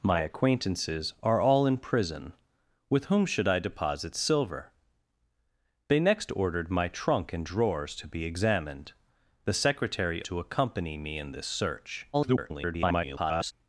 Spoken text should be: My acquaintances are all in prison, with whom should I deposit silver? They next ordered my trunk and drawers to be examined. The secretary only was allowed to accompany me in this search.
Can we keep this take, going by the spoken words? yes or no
no